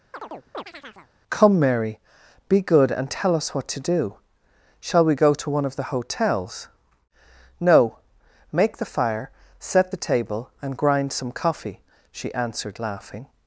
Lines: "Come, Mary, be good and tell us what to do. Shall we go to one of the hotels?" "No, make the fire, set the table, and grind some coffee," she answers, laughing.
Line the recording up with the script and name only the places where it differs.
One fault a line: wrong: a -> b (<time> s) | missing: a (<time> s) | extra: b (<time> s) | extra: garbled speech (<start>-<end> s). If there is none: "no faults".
wrong: answers -> answered (12.3 s)